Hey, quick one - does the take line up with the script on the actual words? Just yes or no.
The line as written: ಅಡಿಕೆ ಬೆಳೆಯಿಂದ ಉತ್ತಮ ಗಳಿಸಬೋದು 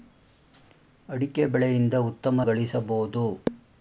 yes